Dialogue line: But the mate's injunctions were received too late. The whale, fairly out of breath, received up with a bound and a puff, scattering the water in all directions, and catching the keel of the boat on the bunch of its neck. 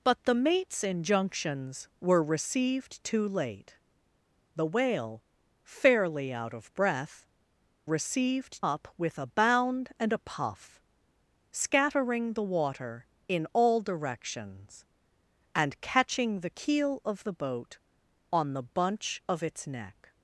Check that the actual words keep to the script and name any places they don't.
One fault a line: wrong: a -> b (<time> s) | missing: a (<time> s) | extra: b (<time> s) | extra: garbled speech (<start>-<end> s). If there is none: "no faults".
no faults